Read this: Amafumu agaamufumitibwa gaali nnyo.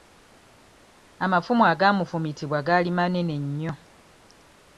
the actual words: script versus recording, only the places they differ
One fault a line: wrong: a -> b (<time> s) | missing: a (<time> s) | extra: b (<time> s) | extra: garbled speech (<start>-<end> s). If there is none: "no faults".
extra: manene (3.0 s)